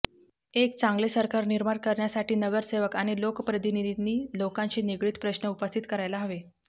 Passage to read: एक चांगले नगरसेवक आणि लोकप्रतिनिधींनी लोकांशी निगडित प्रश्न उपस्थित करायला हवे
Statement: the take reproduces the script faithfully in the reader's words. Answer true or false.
false